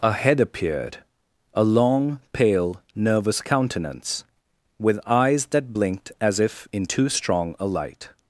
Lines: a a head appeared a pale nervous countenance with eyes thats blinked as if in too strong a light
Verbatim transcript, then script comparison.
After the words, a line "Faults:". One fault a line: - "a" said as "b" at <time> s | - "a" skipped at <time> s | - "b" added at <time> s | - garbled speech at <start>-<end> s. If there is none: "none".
a head appeared a long pale nervous countenance with eyes that blinked as if in too strong a light
Faults:
- "a" skipped at 0.1 s
- "long" added at 1.6 s
- "thats" said as "that" at 5.5 s